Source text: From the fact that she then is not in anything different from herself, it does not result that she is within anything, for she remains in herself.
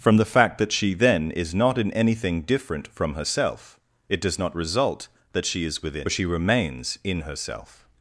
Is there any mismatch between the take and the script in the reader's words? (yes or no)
yes